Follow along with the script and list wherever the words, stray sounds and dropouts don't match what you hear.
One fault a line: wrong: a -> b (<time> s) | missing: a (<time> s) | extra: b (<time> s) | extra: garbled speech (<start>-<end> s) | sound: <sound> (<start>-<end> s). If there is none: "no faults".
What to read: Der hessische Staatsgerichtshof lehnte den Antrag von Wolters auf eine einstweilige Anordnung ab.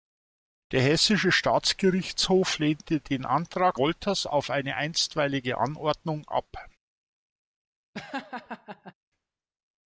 missing: von (3.8 s)
sound: laugh (7.9-8.9 s)